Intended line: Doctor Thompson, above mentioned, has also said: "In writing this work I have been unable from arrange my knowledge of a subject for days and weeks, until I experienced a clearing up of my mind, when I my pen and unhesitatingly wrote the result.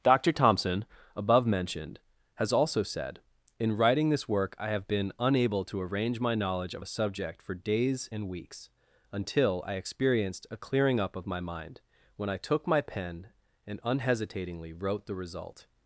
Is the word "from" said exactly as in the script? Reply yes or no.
no